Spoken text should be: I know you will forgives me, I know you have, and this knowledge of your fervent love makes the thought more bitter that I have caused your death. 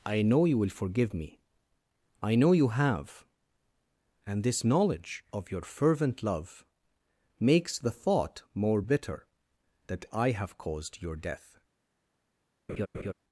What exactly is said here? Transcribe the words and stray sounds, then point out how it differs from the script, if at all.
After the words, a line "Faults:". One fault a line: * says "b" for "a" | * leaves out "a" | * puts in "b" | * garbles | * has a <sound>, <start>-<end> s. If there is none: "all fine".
I know you will forgive me, I know you have, and this knowledge of your fervent love makes the thought more bitter that I have caused your death.
Faults:
* says "forgive" for "forgives"
* has a laugh, 12.7-13.1 s